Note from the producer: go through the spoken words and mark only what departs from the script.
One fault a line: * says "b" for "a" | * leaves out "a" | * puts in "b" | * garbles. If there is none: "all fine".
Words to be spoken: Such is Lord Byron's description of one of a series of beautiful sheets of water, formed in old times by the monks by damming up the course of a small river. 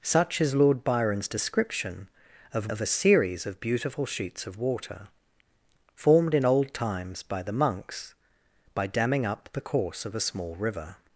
* leaves out "one"